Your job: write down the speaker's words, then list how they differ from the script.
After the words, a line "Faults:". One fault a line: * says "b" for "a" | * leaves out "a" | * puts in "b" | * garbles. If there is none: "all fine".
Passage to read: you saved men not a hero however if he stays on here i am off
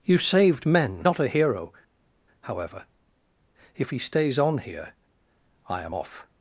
you saved men not a hero however if he stays on here i am off
Faults:
all fine